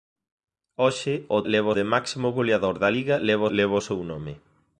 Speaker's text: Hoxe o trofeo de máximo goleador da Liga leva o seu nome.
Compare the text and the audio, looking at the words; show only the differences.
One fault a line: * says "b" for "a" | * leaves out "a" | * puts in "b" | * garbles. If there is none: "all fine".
* says "leva" for "trofeo"
* puts in "leva"